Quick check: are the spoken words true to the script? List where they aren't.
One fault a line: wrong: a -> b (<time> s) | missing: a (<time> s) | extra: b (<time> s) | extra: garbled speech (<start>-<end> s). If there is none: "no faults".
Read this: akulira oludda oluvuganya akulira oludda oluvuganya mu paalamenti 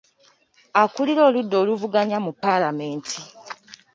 missing: akulira oludda oluvuganya (2.2 s)